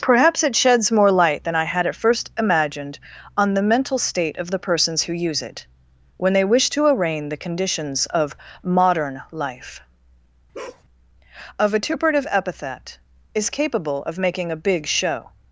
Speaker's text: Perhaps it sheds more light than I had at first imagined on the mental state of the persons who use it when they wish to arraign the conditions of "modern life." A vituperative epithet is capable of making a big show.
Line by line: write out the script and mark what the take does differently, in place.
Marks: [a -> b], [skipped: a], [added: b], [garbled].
Perhaps it sheds more light than I had at first imagined on the mental state of the persons who use it when they wish to arraign the conditions of "modern life." A vituperative epithet is capable of making a big show.